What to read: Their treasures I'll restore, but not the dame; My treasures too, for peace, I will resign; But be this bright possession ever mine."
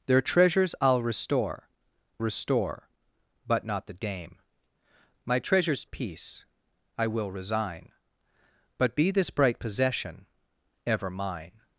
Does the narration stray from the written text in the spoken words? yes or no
yes